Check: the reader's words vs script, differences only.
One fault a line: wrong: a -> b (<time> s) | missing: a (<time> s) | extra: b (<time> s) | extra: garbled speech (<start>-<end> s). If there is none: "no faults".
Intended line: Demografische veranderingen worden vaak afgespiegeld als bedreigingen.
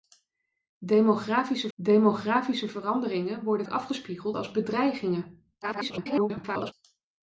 extra: demografische (1.8 s)
missing: vaak (3.7 s)
extra: garbled speech (5.6-6.7 s)